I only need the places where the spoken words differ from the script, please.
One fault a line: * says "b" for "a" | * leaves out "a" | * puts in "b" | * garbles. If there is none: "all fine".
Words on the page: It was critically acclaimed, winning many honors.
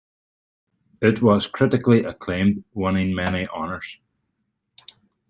all fine